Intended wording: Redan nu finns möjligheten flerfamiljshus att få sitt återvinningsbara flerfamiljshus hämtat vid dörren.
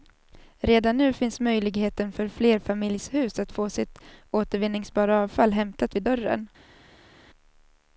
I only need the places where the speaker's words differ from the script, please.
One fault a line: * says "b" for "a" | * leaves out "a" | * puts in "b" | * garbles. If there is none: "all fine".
* puts in "för"
* says "avfall" for "flerfamiljshus"